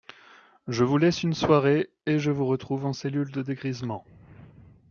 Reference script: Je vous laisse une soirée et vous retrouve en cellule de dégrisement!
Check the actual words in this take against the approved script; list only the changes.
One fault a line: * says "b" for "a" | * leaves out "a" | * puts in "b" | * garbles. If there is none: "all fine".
* puts in "je"